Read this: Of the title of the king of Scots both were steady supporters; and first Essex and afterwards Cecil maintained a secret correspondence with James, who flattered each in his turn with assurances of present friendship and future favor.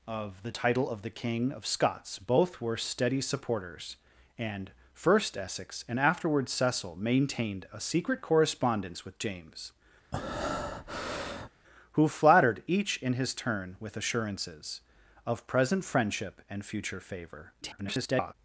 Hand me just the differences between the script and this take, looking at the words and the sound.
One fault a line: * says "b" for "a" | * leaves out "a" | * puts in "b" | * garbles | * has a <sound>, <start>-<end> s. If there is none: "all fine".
* has a breath, 10.1-11.5 s
* garbles